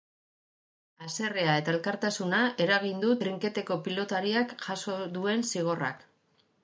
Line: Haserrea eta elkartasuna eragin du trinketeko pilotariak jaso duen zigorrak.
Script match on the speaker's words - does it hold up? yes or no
yes